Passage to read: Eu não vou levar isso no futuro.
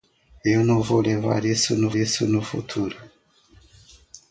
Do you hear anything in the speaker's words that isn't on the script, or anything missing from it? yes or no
yes